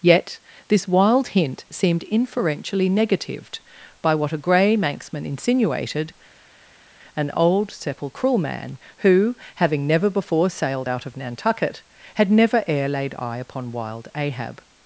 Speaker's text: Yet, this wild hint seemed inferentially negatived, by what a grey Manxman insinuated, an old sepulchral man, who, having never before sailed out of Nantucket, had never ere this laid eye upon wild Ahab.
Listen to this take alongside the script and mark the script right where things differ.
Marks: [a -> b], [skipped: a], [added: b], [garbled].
Yet, this wild hint seemed inferentially negatived, by what a grey Manxman insinuated, an old sepulchral man, who, having never before sailed out of Nantucket, had never ere [skipped: this] laid eye upon wild Ahab.